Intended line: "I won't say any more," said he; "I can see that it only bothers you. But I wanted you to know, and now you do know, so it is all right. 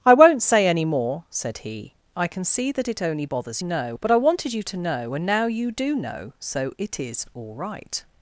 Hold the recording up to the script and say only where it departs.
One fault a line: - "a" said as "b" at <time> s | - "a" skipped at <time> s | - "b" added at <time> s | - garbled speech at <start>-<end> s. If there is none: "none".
- "you" said as "know" at 3.6 s